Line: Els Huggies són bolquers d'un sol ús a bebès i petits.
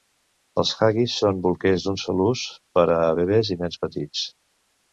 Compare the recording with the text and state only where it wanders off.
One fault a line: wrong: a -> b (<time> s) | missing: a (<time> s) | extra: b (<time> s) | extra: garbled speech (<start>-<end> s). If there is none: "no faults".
extra: per (2.8 s)
extra: nens (3.7 s)